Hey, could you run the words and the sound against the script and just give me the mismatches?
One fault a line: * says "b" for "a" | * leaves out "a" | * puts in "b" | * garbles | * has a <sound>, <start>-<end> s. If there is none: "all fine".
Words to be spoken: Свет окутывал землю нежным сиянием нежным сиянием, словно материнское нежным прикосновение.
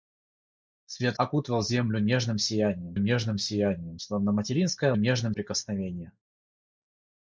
all fine